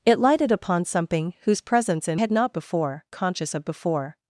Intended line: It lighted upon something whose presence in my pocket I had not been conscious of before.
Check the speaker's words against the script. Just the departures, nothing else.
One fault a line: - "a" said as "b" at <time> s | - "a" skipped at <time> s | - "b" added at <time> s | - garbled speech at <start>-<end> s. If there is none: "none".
- "my pocket I" skipped at 2.2 s
- "been" said as "before" at 2.5 s